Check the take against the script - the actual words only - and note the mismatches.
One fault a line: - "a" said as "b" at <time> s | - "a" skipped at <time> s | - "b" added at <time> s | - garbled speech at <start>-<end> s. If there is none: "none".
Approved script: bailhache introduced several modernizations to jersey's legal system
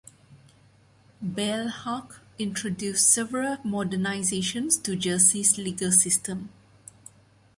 none